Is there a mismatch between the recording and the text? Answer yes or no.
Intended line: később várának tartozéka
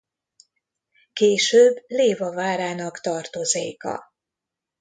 yes